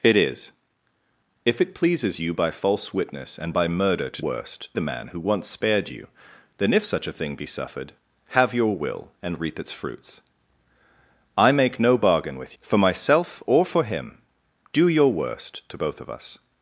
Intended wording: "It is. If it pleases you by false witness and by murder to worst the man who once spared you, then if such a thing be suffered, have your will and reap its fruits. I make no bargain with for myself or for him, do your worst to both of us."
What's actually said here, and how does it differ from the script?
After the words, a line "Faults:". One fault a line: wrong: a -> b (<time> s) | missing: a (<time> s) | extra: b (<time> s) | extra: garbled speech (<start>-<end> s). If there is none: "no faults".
"It is. If it pleases you by false witness and by murder to worst the man who once spared you, then if such a thing be suffered, have your will and reap its fruits. I make no bargain with for myself or for him, do your worst to both of us."
Faults:
no faults